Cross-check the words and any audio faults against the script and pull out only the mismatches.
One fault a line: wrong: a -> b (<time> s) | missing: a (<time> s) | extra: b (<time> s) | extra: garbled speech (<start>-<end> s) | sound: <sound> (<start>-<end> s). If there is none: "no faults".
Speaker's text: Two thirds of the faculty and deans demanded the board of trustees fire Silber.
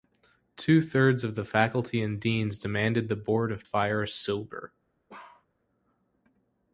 missing: trustees (3.6 s)
sound: bark (5.1-5.5 s)